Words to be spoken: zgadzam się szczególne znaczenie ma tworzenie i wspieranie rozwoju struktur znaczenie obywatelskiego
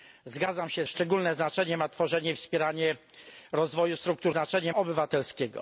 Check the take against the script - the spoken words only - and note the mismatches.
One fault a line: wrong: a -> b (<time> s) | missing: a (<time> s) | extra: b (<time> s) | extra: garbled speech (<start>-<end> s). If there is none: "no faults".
no faults